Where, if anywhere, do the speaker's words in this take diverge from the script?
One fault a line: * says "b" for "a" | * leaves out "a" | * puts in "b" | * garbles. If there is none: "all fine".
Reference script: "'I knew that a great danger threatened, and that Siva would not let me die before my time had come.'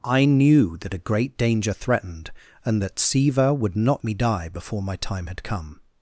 * leaves out "let"